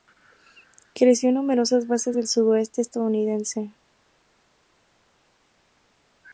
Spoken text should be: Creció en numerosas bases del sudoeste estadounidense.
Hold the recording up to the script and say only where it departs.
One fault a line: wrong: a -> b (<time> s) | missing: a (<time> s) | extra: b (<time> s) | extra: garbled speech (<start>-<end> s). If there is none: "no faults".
no faults